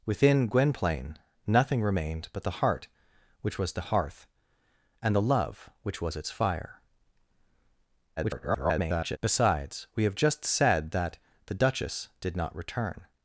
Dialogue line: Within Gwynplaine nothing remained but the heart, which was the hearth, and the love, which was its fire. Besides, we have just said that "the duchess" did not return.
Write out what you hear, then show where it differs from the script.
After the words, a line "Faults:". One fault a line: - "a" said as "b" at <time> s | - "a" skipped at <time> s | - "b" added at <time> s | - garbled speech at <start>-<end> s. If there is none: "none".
Within Gwynplaine nothing remained but the heart, which was the hearth, and the love, which was its fire. [garbled] Besides, we have just said that "the duchess" did not return.
Faults:
- garbled speech at 8.2-9.2 s